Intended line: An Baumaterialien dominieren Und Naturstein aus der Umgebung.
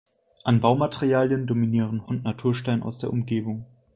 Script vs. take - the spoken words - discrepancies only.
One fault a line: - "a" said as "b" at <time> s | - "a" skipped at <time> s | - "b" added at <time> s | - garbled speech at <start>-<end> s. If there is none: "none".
none